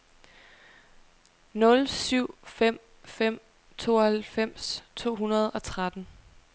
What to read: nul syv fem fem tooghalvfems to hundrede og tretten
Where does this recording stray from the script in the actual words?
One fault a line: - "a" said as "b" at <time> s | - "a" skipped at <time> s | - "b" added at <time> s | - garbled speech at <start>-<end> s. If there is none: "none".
none